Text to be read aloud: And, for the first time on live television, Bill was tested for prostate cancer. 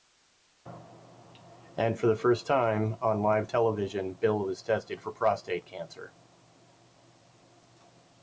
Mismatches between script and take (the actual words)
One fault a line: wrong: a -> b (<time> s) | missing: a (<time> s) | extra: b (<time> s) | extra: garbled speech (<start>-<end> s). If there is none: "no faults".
no faults